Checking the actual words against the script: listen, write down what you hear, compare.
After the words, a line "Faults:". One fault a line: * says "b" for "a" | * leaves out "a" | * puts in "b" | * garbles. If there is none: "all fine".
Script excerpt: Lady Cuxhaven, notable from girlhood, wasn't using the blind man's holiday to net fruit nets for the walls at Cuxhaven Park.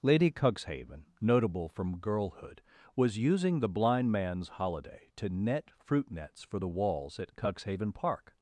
Lady Cuxhaven, notable from girlhood, was using the blind man's holiday to net fruit nets for the walls at Cuxhaven Park.
Faults:
* says "was" for "wasn't"